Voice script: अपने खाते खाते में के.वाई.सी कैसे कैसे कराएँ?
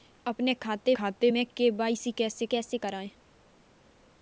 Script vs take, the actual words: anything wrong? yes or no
no